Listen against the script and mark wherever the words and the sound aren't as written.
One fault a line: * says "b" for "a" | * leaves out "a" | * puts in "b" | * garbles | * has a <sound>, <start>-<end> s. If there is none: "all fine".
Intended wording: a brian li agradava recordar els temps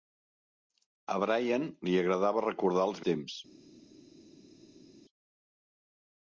all fine